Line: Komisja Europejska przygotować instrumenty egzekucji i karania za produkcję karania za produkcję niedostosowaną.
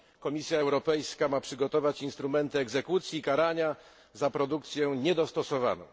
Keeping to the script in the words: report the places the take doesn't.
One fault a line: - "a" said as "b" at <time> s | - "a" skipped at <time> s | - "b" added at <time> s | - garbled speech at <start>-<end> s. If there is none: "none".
- "ma" added at 1.3 s
- "karania za produkcję" skipped at 4.9 s